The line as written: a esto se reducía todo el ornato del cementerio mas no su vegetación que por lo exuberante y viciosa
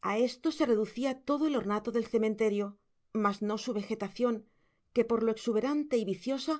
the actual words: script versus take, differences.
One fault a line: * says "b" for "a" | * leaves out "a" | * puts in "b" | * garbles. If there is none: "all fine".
all fine